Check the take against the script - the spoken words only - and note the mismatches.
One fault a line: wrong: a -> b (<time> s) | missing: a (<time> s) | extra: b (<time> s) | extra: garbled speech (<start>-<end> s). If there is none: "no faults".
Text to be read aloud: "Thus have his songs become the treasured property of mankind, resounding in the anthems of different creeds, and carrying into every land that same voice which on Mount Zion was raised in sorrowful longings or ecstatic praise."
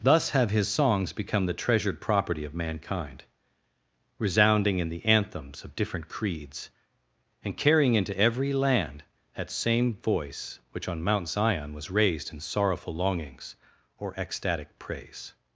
no faults